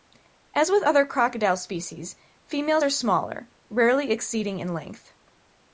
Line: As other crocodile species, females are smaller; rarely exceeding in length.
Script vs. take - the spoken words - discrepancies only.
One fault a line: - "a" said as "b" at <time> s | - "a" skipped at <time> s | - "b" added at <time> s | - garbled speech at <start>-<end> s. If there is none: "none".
- "with" added at 0.7 s